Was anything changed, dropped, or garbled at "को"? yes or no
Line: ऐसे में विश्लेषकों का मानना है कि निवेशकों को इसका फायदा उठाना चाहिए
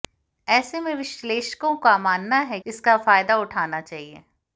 yes